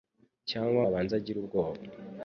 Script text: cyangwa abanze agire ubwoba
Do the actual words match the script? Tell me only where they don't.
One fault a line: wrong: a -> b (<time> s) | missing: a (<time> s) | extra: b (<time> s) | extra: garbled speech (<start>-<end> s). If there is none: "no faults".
no faults